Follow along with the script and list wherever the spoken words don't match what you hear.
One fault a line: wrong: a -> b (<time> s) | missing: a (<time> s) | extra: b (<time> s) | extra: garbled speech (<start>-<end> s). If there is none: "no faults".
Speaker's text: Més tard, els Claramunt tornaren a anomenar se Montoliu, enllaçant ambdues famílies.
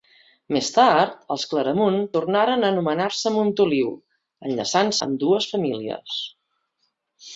no faults